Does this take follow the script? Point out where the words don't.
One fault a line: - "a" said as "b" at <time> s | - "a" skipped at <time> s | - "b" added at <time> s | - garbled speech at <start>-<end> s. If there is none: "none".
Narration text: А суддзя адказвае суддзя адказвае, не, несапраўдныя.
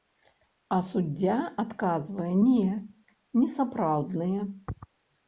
- "суддзя адказвае" skipped at 2.3 s